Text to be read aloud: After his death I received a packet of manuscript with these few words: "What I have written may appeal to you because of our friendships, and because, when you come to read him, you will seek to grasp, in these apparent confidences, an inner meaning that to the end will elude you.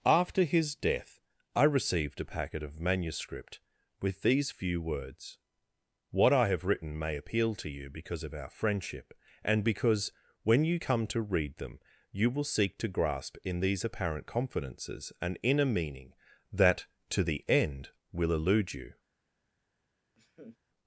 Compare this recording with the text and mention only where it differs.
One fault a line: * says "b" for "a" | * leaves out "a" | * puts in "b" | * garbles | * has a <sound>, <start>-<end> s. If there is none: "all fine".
* says "friendship" for "friendships"
* says "them" for "him"
* has a laugh, 20.2-20.6 s